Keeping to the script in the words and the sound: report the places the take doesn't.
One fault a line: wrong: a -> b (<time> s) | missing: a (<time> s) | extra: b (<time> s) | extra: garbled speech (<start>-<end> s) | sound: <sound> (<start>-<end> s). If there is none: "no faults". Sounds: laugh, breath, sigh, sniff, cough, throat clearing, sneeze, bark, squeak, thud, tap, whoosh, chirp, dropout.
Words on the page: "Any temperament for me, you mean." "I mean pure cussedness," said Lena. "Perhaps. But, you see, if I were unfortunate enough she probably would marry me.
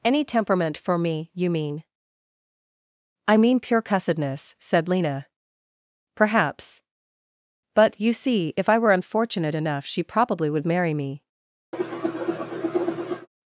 sound: cough (11.7-13.3 s)